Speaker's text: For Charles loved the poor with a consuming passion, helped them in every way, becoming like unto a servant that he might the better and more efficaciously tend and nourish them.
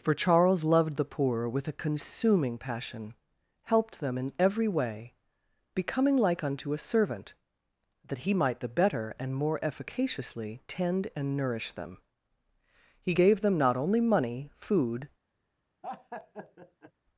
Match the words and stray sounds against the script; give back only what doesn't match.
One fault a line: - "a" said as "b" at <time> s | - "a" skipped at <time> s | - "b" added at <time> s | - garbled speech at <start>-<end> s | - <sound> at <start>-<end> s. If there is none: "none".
- "He gave them not only money food" added at 13.0 s
- laugh at 15.8-16.9 s